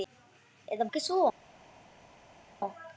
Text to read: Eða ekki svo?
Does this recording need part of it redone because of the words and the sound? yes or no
no